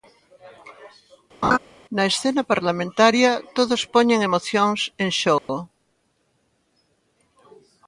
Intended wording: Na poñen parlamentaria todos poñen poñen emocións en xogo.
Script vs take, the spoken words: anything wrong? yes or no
yes